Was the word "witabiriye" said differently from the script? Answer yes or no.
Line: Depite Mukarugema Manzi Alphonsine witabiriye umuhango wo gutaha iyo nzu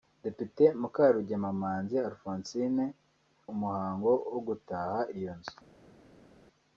yes